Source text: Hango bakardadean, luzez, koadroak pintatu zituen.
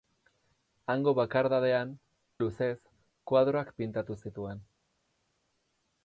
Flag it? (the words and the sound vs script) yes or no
no